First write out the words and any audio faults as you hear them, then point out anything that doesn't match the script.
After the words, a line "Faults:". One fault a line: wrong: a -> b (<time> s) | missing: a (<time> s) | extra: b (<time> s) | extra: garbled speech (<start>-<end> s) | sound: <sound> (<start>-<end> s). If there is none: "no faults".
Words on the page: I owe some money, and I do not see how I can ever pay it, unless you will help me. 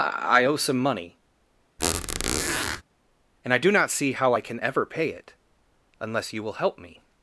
I owe some money, and I do not see how I can ever pay it, unless you will help me.
Faults:
sound: squeak (1.8-2.8 s)